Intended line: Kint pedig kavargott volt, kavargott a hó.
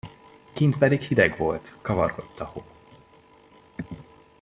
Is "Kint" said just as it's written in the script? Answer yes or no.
yes